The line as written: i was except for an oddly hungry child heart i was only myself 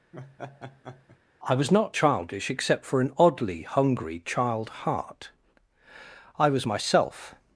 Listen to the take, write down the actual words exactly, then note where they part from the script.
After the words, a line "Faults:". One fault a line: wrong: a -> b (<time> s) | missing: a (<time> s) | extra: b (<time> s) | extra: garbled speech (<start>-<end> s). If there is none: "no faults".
i was not childish except for an oddly hungry child heart i was myself
Faults:
extra: not childish (1.7 s)
missing: only (6.7 s)